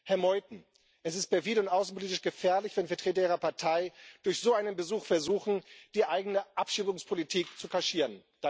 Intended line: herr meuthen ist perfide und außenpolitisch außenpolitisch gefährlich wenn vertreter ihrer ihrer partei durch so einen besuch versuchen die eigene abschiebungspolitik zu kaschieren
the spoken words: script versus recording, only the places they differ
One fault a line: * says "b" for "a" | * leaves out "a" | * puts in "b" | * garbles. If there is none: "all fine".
* puts in "es"
* leaves out "außenpolitisch"
* leaves out "ihrer"